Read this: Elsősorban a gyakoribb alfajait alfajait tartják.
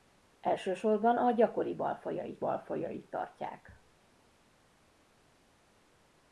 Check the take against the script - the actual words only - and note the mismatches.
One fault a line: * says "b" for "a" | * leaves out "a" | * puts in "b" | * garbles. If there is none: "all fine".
all fine